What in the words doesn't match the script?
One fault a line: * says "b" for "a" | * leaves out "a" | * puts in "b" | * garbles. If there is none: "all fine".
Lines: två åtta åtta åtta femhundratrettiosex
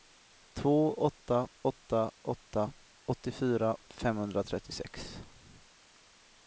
* puts in "åttiofyra"